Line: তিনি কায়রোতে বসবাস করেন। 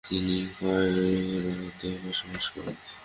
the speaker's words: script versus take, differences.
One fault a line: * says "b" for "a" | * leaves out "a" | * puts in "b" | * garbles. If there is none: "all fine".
all fine